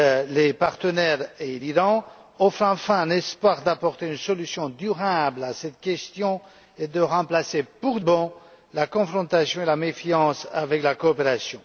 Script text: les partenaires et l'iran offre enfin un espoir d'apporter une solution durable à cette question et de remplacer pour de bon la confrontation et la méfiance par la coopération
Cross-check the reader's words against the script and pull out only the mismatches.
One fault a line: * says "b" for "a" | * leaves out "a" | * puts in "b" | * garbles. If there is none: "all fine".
* leaves out "de"